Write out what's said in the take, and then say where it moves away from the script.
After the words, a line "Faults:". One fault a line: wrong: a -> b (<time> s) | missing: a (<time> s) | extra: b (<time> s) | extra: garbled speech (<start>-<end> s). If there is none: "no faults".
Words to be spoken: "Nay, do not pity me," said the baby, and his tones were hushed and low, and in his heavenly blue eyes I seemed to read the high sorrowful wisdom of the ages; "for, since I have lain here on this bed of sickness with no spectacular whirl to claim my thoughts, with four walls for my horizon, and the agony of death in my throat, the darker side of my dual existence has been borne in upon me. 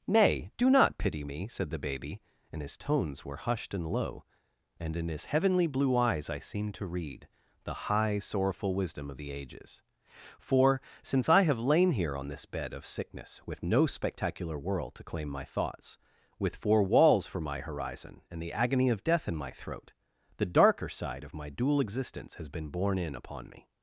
"Nay, do not pity me," said the baby, and his tones were hushed and low, and in his heavenly blue eyes I seemed to read the high sorrowful wisdom of the ages; "for, since I have lain here on this bed of sickness with no spectacular world to claim my thoughts, with four walls for my horizon, and the agony of death in my throat, the darker side of my dual existence has been borne in upon me.
Faults:
wrong: whirl -> world (14.6 s)